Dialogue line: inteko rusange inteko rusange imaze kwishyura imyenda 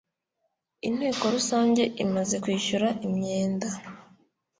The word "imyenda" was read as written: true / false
true